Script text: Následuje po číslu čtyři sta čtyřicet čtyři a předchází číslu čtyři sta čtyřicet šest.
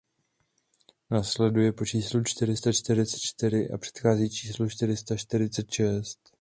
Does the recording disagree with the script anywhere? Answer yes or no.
no